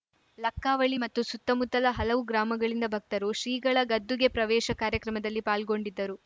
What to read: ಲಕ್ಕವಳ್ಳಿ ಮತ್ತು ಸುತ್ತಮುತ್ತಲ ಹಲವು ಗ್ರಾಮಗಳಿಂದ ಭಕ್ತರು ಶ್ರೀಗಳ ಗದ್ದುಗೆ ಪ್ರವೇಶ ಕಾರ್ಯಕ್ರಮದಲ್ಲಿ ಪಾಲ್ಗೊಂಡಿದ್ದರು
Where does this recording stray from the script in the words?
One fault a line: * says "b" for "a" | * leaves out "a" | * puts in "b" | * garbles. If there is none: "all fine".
all fine